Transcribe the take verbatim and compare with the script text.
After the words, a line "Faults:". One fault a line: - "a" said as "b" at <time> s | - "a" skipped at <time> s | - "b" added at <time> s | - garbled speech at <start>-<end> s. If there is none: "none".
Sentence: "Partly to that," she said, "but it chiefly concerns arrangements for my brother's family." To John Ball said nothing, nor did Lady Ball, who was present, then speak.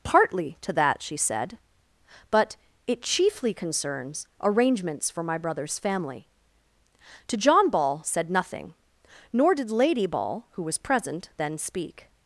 "Partly to that," she said, "but it chiefly concerns arrangements for my brother's family." To John Ball said nothing, nor did Lady Ball, who was present, then speak.
Faults:
none